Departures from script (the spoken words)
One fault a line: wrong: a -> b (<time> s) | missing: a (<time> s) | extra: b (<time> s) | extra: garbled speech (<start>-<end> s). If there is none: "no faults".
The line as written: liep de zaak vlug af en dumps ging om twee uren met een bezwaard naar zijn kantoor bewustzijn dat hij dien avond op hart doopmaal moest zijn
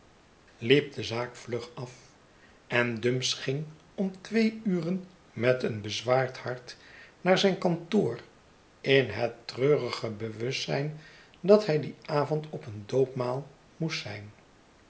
extra: hart (6.4 s)
extra: in het treurige (8.8 s)
wrong: hart -> een (12.7 s)